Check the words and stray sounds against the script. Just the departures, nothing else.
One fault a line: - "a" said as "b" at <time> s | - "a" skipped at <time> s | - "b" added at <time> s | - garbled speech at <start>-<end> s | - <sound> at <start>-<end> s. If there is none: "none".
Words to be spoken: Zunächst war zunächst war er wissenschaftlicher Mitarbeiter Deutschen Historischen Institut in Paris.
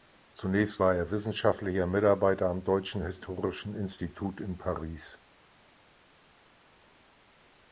- "zunächst war" skipped at 0.9 s
- "am" added at 2.5 s